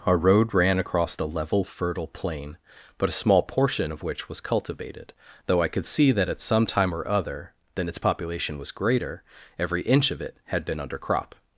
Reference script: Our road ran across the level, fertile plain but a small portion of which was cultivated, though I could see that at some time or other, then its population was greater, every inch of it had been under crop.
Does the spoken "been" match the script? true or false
true